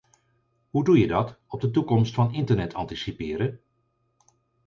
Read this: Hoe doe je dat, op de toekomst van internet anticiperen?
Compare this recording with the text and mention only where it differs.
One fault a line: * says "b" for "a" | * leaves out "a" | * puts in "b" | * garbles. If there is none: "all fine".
all fine